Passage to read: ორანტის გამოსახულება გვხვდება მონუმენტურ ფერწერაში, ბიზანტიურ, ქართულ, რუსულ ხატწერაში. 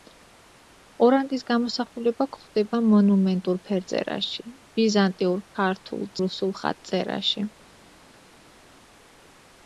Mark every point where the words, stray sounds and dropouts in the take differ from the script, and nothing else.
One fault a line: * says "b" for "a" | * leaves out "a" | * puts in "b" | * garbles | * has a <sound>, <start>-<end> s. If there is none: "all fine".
all fine